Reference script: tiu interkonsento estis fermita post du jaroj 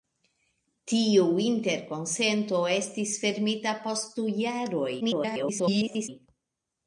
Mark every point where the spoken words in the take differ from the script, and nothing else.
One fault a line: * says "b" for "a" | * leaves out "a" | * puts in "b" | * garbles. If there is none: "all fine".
* garbles